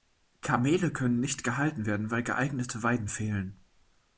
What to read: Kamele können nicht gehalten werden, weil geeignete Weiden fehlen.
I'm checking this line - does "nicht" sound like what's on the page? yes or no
yes